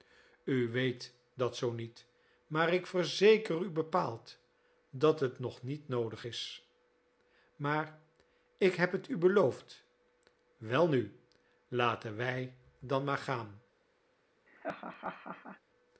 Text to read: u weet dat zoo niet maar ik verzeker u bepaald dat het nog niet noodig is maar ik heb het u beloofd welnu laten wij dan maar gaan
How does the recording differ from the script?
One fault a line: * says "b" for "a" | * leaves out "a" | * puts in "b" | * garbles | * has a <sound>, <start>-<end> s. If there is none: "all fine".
* has a laugh, 14.5-15.6 s